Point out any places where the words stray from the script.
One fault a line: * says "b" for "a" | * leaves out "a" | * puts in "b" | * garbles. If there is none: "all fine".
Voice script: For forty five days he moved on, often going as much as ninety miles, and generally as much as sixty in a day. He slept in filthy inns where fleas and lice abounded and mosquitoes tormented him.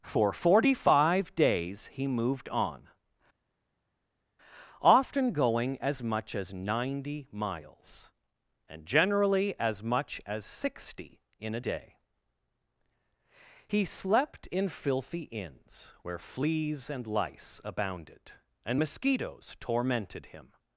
all fine